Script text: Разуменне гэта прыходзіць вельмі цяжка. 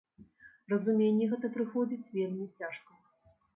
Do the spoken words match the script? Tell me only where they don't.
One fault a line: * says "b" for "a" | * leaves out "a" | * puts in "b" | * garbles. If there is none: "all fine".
all fine